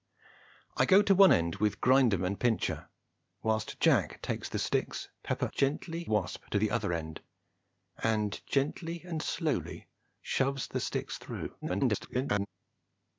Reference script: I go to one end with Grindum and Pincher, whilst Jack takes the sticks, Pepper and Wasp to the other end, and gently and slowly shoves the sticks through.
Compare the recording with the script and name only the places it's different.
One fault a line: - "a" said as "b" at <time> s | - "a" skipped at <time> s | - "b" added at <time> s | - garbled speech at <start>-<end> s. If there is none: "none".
- "and" said as "gently" at 5.5 s
- garbled speech at 11.6-12.5 s